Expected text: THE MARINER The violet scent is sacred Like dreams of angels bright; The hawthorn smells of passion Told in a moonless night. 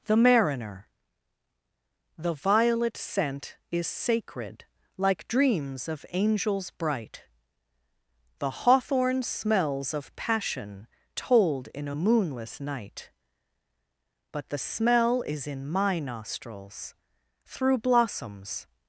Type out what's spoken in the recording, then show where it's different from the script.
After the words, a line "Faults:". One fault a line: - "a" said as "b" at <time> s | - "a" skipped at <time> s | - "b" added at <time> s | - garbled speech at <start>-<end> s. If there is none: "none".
THE MARINER The violet scent is sacred Like dreams of angels bright; The hawthorn smells of passion Told in a moonless night. But the smell is in my nostrils, Through blossoms
Faults:
- "But the smell is in my nostrils Through blossoms" added at 14.3 s